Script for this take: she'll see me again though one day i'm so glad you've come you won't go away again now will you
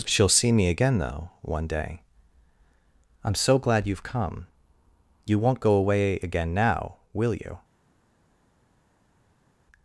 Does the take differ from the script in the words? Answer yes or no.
no